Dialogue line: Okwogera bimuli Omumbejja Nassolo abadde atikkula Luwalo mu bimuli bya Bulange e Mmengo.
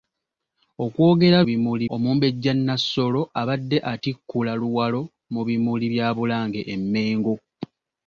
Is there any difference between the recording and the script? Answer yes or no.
no